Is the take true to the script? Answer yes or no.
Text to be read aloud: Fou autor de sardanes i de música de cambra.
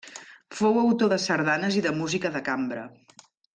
yes